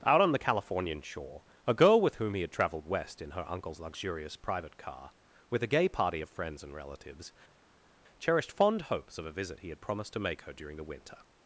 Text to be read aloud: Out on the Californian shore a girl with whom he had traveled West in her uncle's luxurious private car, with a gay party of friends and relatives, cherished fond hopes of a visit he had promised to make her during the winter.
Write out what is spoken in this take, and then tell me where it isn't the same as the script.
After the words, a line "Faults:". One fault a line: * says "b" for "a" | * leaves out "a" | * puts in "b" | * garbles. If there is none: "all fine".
Out on the Californian shore a girl with whom he had traveled West in her uncle's luxurious private car, with a gay party of friends and relatives, cherished fond hopes of a visit he had promised to make her during the winter.
Faults:
all fine